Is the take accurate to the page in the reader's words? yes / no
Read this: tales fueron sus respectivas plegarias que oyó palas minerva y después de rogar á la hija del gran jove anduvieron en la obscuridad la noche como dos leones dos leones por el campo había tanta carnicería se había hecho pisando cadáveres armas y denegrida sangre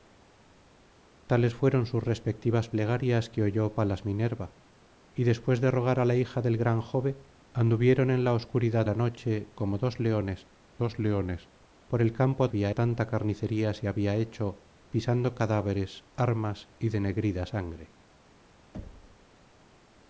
yes